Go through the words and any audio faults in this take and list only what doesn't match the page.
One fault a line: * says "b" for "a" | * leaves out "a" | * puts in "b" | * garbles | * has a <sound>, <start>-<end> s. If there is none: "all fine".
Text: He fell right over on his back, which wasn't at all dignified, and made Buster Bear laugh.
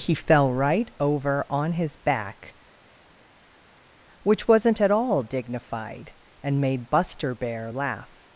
all fine